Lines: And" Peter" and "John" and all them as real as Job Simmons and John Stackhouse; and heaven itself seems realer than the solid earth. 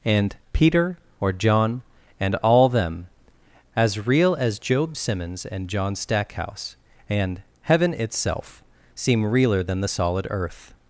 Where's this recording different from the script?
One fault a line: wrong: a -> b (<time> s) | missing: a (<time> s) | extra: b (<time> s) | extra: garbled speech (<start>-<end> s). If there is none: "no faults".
wrong: and -> or (1.2 s)
wrong: seems -> seem (8.9 s)